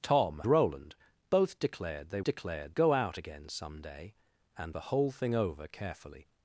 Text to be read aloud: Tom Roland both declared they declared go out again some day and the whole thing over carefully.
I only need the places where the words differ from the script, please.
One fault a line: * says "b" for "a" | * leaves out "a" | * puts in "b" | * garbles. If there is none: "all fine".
all fine